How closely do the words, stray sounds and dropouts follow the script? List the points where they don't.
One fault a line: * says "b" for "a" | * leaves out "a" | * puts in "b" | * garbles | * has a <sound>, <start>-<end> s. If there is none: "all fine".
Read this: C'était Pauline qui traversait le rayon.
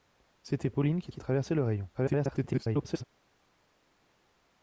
* puts in "qui"
* garbles